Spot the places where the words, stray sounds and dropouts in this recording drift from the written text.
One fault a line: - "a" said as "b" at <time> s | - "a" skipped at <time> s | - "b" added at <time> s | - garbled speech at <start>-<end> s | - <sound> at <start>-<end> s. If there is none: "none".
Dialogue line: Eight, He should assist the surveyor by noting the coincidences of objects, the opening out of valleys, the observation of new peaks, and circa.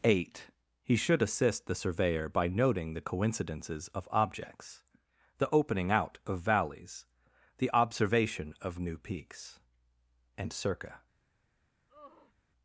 - sigh at 11.9-12.3 s